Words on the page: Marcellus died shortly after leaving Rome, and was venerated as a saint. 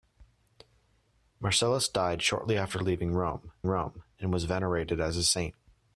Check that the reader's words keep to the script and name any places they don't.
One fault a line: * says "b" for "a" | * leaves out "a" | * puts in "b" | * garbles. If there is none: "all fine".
* puts in "Rome"